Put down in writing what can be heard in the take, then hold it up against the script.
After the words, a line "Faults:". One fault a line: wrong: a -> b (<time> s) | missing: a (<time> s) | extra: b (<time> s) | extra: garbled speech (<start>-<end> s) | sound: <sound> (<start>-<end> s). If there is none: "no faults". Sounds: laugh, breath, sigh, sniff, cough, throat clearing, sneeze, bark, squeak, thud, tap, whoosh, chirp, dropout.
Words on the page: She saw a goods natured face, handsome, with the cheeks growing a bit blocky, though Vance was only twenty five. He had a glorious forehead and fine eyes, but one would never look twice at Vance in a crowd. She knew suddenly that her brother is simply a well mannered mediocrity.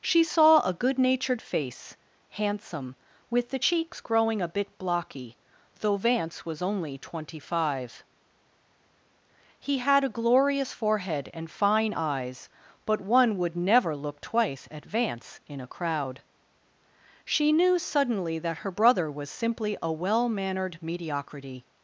She saw a good natured face, handsome, with the cheeks growing a bit blocky, though Vance was only twenty five. He had a glorious forehead and fine eyes, but one would never look twice at Vance in a crowd. She knew suddenly that her brother was simply a well mannered mediocrity.
Faults:
wrong: goods -> good (0.7 s)
wrong: is -> was (19.1 s)